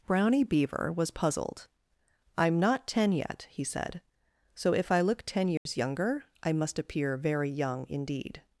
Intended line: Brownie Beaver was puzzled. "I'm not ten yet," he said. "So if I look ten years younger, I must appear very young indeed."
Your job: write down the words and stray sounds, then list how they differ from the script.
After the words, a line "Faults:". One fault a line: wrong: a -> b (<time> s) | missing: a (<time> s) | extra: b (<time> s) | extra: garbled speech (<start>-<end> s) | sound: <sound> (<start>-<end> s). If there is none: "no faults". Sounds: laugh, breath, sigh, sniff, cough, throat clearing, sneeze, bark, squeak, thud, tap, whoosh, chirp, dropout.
Brownie Beaver was puzzled. "I'm not ten yet," he said. "So if I look ten years younger, I must appear very young indeed."
Faults:
sound: dropout (5.6-5.7 s)